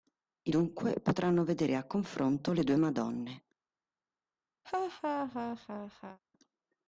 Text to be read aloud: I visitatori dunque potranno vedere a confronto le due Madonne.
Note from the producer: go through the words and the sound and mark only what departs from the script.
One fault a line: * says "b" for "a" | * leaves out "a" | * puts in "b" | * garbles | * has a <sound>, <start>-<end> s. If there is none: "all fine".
* leaves out "visitatori"
* has a laugh, 4.6-6.2 s